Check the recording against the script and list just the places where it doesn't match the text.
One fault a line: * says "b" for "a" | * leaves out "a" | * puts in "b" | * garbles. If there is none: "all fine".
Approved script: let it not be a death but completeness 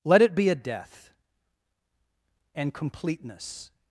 * leaves out "not"
* says "and" for "but"